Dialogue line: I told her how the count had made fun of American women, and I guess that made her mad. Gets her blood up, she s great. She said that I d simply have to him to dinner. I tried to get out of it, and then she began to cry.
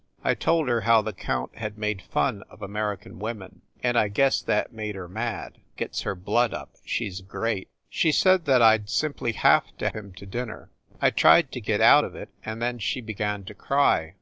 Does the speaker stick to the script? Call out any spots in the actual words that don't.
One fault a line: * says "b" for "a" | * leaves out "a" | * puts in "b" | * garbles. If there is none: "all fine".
all fine